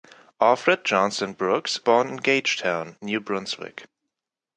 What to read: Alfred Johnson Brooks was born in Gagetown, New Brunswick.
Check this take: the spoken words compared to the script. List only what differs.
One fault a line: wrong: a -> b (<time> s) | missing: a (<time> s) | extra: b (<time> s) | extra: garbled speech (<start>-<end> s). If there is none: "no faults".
missing: was (1.9 s)